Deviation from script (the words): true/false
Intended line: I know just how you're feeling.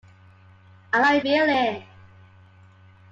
true